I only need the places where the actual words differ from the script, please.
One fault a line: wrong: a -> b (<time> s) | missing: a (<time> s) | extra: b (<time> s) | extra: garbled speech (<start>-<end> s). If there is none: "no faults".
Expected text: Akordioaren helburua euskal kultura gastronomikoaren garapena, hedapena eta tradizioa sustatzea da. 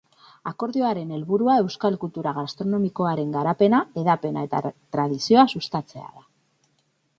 no faults